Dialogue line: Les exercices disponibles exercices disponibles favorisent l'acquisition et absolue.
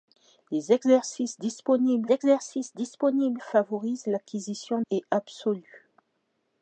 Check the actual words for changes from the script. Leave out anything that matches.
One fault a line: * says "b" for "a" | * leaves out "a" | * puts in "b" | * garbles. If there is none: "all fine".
all fine